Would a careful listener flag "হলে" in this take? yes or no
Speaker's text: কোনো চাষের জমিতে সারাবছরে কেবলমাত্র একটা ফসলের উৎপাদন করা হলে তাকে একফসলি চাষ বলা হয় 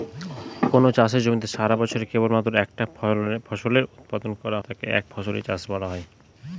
yes